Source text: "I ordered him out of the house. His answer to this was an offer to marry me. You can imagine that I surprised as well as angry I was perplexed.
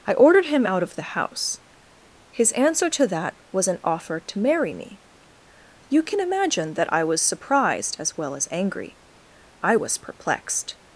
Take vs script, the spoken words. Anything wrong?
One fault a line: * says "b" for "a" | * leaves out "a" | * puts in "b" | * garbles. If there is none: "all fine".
* says "that" for "this"
* puts in "was"